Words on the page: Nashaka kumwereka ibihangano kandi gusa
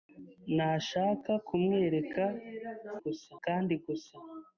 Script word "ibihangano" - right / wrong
wrong